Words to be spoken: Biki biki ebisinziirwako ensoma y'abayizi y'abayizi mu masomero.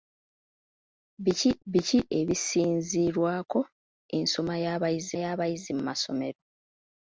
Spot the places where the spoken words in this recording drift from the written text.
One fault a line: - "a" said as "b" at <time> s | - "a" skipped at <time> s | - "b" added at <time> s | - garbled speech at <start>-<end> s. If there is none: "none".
none